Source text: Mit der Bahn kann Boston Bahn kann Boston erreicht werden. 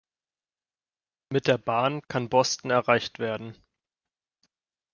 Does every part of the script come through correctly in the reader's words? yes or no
no